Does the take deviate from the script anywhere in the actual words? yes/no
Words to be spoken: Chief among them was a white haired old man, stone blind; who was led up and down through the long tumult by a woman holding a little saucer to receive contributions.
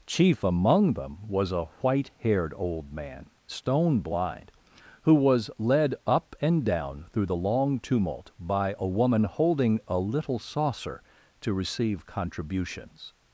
no